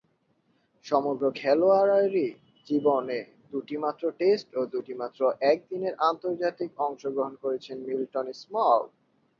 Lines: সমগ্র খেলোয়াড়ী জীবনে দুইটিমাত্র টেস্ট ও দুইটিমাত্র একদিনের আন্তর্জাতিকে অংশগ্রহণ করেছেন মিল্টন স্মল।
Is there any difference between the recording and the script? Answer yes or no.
no